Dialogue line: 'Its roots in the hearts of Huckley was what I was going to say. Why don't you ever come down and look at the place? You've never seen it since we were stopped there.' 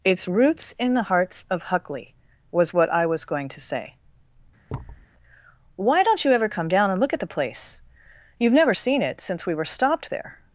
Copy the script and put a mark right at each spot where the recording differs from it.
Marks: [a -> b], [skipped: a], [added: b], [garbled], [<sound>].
'Its roots in the hearts of Huckley was what I was going to say. [thud] Why don't you ever come down and look at the place? You've never seen it since we were stopped there.'